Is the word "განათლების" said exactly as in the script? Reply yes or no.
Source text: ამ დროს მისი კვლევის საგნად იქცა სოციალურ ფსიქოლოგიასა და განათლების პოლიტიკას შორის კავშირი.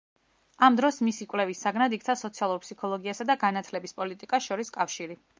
yes